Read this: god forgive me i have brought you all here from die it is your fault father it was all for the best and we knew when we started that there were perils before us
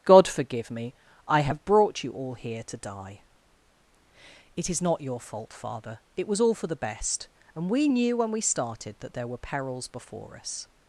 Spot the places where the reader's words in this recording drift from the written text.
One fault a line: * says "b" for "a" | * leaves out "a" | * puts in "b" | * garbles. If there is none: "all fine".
* says "to" for "from"
* puts in "not"